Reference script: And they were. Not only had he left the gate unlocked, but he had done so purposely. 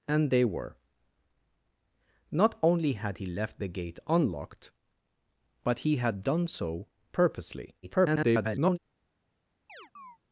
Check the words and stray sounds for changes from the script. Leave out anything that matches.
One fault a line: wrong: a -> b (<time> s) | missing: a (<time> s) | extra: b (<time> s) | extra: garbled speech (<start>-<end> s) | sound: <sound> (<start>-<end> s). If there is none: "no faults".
extra: garbled speech (7.8-8.8 s)
sound: chirp (9.7-10.2 s)